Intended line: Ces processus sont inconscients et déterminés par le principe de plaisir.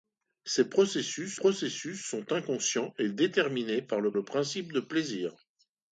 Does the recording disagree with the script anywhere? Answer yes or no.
yes